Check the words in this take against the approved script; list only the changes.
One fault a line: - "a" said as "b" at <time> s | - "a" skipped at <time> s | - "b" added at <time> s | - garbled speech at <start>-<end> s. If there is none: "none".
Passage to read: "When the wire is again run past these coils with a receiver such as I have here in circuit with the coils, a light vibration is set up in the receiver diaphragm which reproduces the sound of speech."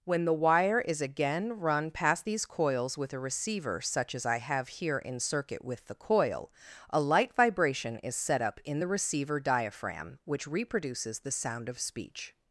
- "coils" said as "coil" at 6.0 s